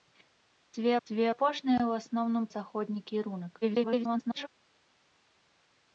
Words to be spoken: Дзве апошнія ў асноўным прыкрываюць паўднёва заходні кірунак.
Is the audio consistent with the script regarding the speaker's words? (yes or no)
no